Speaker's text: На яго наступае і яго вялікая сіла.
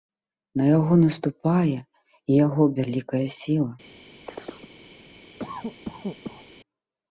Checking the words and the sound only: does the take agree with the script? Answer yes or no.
no